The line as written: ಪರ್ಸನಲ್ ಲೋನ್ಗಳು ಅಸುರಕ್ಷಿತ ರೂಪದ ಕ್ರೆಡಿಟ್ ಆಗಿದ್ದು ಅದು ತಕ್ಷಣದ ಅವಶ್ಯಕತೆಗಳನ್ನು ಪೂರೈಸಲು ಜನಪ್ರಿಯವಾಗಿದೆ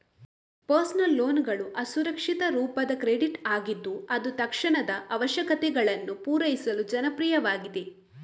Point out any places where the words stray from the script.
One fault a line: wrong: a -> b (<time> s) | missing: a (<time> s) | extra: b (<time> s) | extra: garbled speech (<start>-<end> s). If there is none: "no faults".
no faults